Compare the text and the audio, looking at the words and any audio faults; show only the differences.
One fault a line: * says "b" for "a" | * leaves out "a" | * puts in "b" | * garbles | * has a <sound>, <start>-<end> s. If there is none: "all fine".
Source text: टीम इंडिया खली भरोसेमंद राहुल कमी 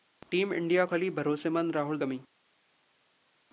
all fine